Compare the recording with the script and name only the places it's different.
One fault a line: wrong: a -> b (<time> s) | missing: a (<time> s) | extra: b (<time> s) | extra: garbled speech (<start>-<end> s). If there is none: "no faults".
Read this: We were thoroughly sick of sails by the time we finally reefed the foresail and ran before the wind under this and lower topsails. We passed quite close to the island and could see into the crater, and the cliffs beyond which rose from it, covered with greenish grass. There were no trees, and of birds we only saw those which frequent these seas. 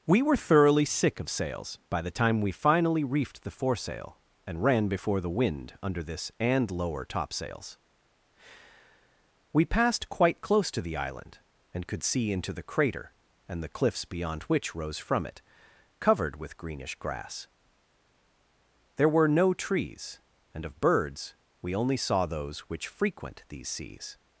no faults